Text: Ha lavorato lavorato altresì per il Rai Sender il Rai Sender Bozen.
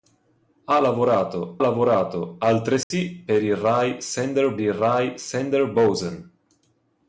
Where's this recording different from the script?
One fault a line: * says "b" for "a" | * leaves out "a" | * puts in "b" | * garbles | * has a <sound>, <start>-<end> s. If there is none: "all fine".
* has a dropout, 2.8-2.9 s